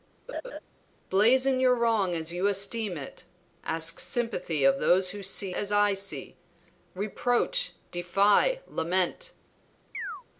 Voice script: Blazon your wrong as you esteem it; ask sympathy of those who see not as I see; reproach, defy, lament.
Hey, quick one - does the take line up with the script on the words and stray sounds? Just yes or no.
no